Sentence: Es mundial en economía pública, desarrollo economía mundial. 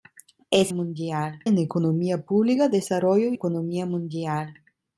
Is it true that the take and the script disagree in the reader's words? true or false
false